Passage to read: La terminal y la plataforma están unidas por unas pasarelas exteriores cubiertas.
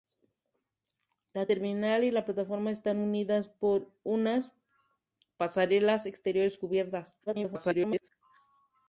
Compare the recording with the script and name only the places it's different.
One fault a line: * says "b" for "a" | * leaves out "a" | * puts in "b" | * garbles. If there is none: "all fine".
* garbles